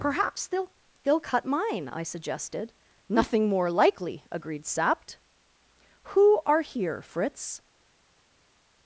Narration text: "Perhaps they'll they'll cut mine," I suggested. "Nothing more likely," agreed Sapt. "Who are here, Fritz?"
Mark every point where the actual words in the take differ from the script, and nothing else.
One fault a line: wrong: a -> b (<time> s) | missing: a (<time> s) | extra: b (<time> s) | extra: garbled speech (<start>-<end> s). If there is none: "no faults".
no faults